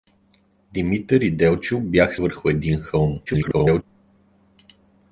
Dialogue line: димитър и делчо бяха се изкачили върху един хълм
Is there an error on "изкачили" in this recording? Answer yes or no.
yes